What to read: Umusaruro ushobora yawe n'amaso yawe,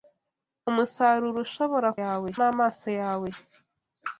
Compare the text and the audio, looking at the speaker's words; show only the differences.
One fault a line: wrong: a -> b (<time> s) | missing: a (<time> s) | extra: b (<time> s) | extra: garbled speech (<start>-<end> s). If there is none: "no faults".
no faults